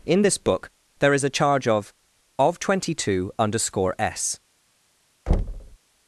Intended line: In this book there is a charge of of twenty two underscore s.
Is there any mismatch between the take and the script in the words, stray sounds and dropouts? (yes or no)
yes